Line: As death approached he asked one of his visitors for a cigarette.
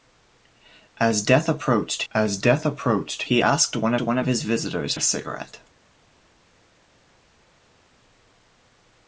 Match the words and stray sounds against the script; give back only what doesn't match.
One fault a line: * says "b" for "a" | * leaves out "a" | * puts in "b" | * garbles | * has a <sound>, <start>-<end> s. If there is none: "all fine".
* puts in "as death approached"
* puts in "one"
* leaves out "for"